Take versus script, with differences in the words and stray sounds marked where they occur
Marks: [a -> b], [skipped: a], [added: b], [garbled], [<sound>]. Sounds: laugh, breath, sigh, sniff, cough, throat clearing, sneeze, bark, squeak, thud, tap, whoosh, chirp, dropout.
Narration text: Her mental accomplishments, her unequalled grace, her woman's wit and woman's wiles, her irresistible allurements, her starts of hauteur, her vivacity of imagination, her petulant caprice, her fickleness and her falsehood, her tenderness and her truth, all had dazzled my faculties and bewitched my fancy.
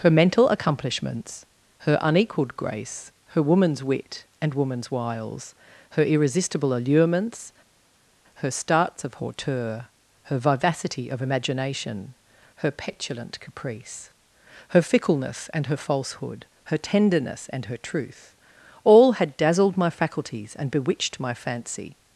Her mental accomplishments, her unequalled grace, her woman's wit and woman's wiles, her irresistible allurements, her starts of hauteur, her vivacity of imagination, her petulant caprice, her fickleness and her falsehood, her tenderness and her truth, all had dazzled my faculties and bewitched my fancy.